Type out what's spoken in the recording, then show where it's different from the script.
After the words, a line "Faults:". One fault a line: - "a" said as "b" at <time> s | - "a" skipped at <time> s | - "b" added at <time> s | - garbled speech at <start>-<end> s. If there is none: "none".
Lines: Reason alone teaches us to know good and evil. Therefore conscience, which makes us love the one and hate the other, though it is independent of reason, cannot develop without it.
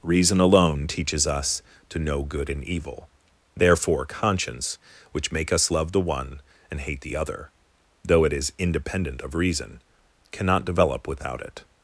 Reason alone teaches us to know good and evil. Therefore conscience, which make us love the one and hate the other, though it is independent of reason, cannot develop without it.
Faults:
- "makes" said as "make" at 5.3 s